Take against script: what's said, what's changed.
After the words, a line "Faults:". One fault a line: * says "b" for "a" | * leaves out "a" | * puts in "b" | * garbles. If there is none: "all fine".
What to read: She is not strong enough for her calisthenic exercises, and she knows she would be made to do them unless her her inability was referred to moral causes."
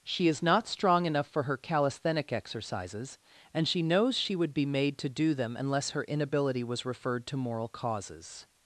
She is not strong enough for her calisthenic exercises, and she knows she would be made to do them unless her inability was referred to moral causes."
Faults:
* leaves out "her"